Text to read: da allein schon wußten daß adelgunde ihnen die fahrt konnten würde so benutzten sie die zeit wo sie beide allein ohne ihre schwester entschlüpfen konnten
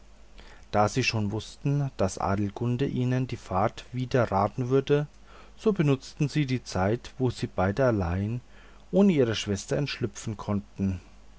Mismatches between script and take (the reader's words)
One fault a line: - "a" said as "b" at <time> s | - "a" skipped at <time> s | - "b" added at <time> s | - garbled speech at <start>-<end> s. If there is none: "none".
- "allein" said as "sie" at 0.9 s
- "konnten" said as "widerraten" at 3.9 s